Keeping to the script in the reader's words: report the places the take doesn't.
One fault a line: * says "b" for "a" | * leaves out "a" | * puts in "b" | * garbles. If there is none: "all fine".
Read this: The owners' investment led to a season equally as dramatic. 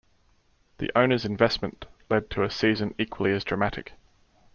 all fine